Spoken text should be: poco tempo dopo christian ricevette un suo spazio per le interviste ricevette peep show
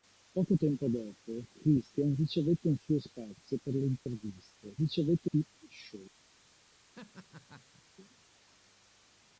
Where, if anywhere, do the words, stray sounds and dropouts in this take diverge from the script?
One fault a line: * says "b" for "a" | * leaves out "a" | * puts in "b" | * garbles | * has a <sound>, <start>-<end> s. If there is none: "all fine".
* has a dropout, 4.0-4.1 s
* has a laugh, 7.0-7.8 s